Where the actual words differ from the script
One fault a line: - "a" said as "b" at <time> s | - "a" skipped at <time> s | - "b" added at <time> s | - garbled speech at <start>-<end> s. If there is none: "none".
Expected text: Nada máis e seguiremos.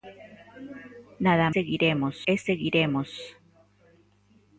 - "máis" said as "seguiremos" at 1.5 s